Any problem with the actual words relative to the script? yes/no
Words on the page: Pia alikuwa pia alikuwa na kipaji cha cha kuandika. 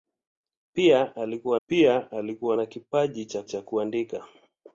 no